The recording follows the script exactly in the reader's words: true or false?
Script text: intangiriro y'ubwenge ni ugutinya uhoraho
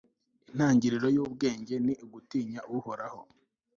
true